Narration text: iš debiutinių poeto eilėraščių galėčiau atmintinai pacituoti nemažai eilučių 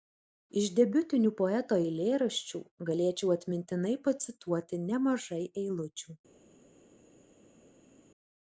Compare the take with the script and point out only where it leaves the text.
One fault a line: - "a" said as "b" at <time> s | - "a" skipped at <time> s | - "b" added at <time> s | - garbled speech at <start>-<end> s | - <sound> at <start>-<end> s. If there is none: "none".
none